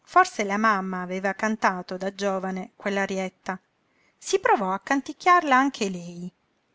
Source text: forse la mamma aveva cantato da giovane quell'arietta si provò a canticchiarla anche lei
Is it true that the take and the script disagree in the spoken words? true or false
false